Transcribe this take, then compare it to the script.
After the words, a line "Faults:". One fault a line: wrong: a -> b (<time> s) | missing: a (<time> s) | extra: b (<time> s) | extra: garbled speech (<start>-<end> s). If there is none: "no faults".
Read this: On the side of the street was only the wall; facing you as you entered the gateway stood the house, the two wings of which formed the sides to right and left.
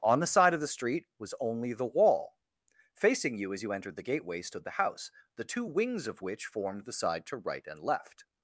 On the side of the street was only the wall; facing you as you entered the gateway stood the house, the two wings of which formed the side to right and left.
Faults:
wrong: sides -> side (6.9 s)